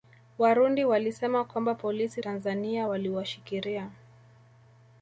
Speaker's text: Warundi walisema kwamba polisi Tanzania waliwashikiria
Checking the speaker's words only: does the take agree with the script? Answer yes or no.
yes